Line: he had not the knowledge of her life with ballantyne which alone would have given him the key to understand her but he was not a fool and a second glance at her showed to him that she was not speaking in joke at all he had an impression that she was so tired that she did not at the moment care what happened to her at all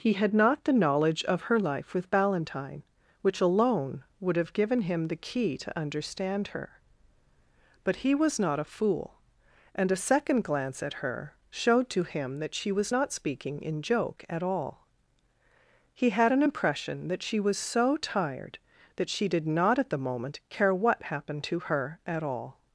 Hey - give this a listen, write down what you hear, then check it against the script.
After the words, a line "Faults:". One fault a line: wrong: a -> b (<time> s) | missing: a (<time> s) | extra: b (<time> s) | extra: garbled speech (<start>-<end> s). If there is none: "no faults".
he had not the knowledge of her life with ballantyne which alone would have given him the key to understand her but he was not a fool and a second glance at her showed to him that she was not speaking in joke at all he had an impression that she was so tired that she did not at the moment care what happened to her at all
Faults:
no faults